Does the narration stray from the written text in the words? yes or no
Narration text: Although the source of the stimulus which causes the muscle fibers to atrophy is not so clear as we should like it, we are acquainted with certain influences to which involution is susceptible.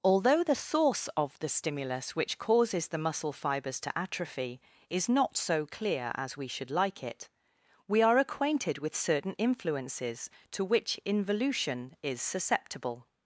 no